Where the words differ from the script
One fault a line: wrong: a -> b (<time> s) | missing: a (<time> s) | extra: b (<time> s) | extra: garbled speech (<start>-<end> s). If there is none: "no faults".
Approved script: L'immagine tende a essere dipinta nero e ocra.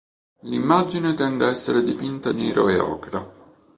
no faults